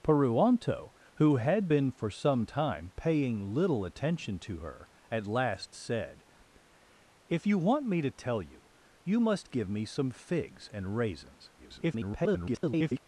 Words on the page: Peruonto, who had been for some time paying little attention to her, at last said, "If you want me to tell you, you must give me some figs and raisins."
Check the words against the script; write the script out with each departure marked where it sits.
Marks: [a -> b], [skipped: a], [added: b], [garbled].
Peruonto, who had been for some time paying little attention to her, at last said, "If you want me to tell you, you must give me some figs and raisins." [garbled]